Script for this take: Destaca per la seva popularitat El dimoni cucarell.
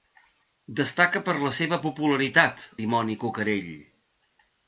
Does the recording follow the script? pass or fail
fail